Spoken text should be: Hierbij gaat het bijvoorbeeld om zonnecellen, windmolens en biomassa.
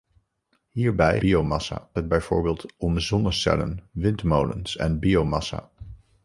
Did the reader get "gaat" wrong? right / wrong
wrong